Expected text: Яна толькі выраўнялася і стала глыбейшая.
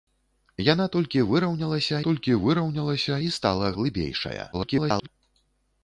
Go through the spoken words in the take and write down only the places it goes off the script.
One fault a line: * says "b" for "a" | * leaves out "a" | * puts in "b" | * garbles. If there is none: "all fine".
* puts in "толькі выраўнялася"
* garbles